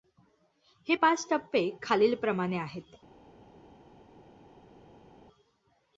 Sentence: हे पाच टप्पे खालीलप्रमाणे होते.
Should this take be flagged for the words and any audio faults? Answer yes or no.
yes